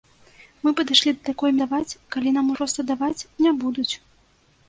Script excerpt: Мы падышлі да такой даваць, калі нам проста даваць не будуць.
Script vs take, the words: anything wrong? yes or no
no